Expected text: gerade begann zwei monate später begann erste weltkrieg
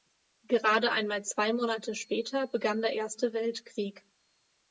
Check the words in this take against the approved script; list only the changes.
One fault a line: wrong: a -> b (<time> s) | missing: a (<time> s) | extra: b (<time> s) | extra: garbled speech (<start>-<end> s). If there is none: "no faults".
wrong: begann -> einmal (0.9 s)
extra: der (2.8 s)